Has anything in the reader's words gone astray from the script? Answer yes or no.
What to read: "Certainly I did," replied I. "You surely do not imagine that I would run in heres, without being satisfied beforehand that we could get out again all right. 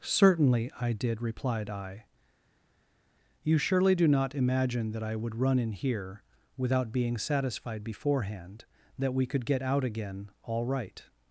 yes